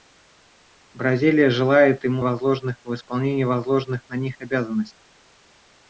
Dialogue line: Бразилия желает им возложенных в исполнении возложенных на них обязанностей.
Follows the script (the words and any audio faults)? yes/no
yes